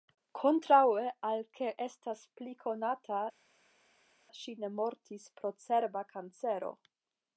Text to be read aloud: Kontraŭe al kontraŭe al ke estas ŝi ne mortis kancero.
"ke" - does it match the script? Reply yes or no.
no